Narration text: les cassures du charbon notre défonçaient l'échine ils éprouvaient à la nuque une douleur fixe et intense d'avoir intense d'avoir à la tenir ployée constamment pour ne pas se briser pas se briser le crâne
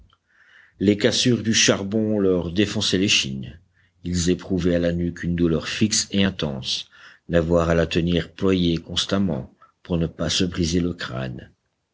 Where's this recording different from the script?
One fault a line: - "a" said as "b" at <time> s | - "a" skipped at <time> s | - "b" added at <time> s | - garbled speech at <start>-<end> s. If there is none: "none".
- "notre" said as "leur" at 2.2 s
- "intense d'avoir" skipped at 7.7 s
- "pas se briser" skipped at 10.8 s